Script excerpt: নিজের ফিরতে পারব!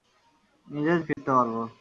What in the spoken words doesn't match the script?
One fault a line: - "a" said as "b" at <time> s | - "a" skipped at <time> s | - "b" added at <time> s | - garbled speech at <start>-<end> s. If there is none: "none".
none